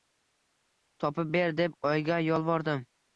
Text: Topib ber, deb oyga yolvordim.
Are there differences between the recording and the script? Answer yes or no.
no